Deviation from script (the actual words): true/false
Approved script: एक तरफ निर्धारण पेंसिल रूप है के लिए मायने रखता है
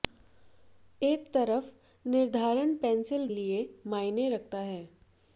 true